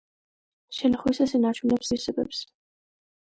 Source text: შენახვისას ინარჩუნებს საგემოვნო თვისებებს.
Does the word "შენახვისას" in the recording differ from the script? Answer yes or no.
no